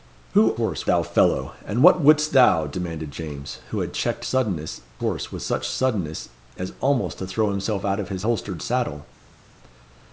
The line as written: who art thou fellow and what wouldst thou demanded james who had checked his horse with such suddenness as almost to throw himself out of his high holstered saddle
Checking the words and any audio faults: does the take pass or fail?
fail